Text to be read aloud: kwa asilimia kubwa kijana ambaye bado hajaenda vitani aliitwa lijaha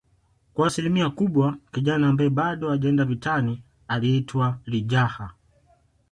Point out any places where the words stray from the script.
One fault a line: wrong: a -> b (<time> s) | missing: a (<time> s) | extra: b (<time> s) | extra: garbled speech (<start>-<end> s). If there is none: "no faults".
no faults